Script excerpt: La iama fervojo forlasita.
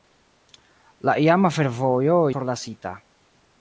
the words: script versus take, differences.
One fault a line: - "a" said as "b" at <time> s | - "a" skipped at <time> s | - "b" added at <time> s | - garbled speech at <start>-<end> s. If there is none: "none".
none